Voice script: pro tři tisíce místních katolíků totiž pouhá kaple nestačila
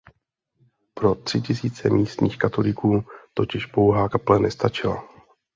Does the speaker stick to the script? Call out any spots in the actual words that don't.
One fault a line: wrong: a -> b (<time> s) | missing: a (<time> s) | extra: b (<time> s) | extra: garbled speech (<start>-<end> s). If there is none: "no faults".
no faults